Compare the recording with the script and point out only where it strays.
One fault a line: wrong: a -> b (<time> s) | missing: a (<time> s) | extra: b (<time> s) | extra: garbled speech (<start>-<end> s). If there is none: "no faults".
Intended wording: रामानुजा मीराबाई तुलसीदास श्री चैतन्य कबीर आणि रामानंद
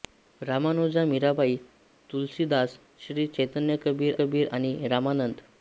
extra: कबीर (4.2 s)